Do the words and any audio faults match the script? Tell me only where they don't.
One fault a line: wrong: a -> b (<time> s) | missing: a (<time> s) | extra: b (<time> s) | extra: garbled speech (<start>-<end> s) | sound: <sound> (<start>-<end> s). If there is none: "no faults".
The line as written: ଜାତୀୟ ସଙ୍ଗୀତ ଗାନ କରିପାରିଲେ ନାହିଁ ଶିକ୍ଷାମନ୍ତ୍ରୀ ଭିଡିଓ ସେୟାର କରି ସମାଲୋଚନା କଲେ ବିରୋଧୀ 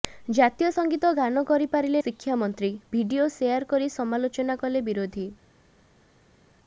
missing: ନାହିଁ (2.0 s)